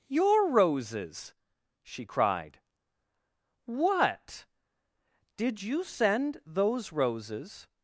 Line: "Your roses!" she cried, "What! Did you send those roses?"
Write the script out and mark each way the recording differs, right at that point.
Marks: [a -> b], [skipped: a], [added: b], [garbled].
"Your roses!" she cried, "What! Did you send those roses?"